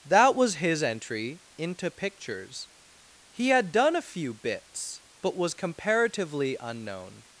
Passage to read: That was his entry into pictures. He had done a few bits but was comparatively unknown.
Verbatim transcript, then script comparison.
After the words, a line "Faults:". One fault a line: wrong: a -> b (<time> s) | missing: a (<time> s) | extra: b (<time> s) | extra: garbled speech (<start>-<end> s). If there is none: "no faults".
That was his entry into pictures. He had done a few bits but was comparatively unknown.
Faults:
no faults